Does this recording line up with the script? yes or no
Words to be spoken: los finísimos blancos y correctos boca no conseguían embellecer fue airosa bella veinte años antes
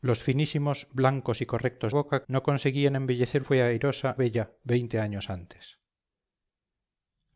yes